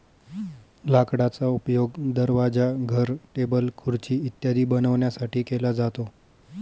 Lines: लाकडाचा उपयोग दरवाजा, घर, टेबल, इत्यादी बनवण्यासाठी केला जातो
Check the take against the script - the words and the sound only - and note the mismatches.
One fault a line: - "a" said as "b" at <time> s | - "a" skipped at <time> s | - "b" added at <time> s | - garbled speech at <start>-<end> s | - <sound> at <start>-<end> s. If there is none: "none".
- "खुर्ची" added at 3.8 s